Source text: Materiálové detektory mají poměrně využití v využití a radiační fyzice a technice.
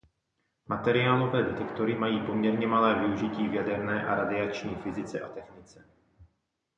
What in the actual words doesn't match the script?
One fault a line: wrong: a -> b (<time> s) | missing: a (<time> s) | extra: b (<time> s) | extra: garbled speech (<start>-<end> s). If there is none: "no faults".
extra: malé (2.7 s)
wrong: využití -> jaderné (3.5 s)